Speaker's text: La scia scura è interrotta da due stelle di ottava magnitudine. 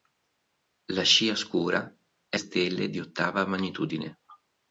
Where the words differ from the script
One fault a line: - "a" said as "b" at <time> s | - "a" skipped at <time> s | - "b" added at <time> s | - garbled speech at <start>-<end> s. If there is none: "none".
- "interrotta da due" skipped at 2.4 s